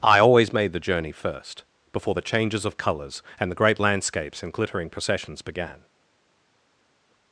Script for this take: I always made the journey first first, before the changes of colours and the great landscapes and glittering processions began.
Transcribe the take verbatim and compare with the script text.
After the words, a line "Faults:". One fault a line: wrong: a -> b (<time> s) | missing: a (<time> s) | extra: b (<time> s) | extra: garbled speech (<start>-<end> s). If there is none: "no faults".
I always made the journey first, before the changes of colours and the great landscapes and glittering processions began.
Faults:
missing: first (1.6 s)